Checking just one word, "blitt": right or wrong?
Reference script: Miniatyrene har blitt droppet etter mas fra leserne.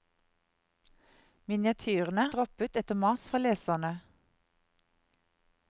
wrong